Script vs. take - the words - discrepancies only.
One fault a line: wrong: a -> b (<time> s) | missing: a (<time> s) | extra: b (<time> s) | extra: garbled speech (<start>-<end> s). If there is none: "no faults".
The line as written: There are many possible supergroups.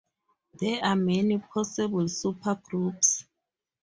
no faults